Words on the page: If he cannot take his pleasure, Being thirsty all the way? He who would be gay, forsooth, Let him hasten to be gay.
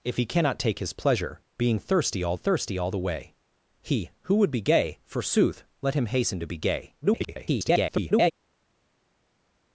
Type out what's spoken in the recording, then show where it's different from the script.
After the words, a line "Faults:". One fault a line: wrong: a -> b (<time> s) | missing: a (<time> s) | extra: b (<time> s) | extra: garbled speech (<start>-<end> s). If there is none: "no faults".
If he cannot take his pleasure, Being thirsty all thirsty all the way? He who would be gay, forsooth, Let him hasten to be gay. [garbled]
Faults:
extra: thirsty all (2.3 s)
extra: garbled speech (7.0-8.3 s)